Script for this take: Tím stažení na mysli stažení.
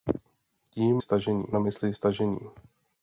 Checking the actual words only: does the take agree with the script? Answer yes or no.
yes